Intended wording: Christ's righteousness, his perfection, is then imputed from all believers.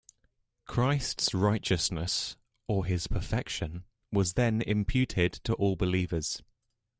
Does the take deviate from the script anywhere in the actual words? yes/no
yes